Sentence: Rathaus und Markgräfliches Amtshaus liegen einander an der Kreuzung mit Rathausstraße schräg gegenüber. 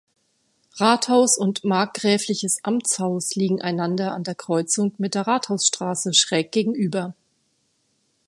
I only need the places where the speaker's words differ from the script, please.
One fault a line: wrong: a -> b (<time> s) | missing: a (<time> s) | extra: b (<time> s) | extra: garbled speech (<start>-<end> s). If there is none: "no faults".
extra: der (5.1 s)